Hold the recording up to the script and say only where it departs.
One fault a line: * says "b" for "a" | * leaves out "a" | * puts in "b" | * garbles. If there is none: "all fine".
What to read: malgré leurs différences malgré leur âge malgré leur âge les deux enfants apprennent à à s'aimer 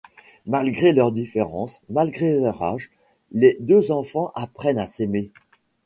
* leaves out "malgré leur âge"
* leaves out "à"